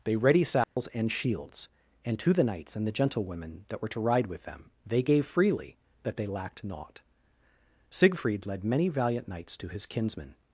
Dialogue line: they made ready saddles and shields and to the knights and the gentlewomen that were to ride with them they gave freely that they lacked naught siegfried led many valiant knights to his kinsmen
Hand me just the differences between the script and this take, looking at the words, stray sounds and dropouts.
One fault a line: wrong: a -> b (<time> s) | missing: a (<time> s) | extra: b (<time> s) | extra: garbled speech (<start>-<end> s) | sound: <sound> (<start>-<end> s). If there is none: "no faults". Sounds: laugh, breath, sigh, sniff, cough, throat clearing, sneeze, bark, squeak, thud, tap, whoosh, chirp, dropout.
missing: made (0.1 s)
sound: dropout (0.6-0.8 s)